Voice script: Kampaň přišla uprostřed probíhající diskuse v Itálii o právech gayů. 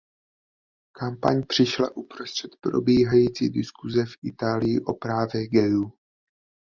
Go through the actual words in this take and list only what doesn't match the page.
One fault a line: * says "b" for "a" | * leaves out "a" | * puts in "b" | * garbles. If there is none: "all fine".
all fine